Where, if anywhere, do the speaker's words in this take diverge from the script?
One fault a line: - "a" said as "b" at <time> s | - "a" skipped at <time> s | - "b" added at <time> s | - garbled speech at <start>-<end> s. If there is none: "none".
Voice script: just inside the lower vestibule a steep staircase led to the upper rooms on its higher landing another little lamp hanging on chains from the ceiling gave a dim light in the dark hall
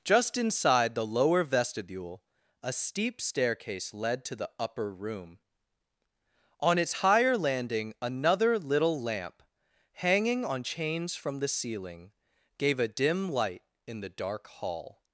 - "rooms" said as "room" at 4.9 s